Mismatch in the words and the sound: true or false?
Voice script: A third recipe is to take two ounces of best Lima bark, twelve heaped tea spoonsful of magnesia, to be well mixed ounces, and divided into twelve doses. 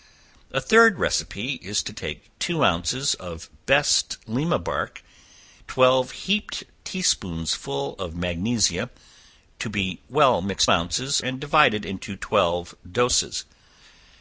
false